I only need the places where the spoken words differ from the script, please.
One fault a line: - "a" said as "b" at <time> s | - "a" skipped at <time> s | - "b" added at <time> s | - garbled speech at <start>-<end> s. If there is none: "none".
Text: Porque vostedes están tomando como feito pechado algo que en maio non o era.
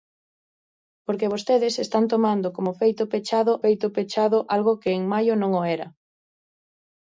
- "feito pechado" added at 3.6 s